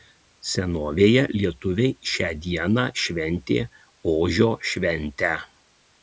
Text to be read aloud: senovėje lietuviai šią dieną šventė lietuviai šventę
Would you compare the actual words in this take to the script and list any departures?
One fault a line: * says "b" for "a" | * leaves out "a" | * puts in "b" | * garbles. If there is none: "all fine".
* says "ožio" for "lietuviai"